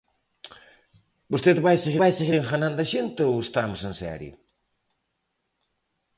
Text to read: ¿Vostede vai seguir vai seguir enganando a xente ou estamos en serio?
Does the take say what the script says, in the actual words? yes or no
yes